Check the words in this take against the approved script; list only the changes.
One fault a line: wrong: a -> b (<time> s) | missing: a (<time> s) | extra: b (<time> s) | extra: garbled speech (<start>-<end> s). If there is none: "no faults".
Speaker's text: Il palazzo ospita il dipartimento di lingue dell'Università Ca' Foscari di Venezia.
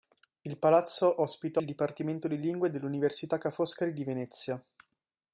no faults